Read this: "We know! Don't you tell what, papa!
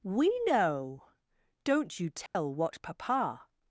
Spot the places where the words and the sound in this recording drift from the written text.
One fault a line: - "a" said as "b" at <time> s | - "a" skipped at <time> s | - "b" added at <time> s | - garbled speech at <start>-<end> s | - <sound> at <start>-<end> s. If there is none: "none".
- dropout at 2.3-2.4 s